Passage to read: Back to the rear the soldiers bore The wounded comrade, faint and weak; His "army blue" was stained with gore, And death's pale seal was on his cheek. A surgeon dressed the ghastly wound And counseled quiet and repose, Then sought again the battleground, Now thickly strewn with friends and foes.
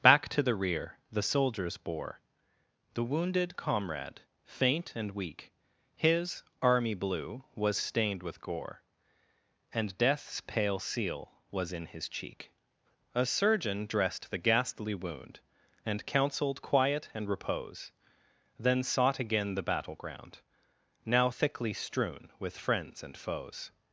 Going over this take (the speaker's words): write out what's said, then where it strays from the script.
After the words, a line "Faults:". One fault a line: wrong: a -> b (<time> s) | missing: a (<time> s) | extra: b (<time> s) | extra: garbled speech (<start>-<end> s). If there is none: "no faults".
Back to the rear the soldiers bore The wounded comrade, faint and weak; His "army blue" was stained with gore, And death's pale seal was in his cheek. A surgeon dressed the ghastly wound And counseled quiet and repose, Then sought again the battleground, Now thickly strewn with friends and foes.
Faults:
wrong: on -> in (11.7 s)